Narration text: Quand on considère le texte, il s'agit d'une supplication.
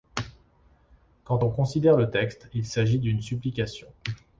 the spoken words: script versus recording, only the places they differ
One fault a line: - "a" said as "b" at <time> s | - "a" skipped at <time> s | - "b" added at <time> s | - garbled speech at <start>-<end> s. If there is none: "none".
none